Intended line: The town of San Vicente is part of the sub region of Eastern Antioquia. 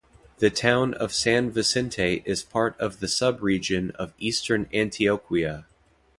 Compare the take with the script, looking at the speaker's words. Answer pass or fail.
pass